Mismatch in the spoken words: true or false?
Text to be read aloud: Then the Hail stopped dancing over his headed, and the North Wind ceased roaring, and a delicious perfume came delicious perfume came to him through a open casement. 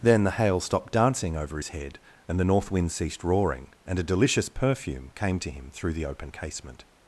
true